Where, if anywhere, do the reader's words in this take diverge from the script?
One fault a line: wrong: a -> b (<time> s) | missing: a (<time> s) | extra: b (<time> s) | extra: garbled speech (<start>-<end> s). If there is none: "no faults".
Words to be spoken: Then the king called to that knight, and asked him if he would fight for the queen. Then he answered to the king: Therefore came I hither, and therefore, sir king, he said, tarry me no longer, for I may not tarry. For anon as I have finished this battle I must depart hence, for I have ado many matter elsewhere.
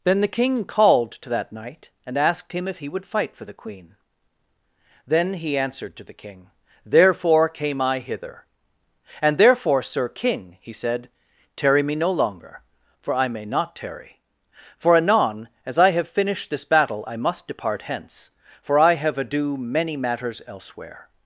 wrong: matter -> matters (19.9 s)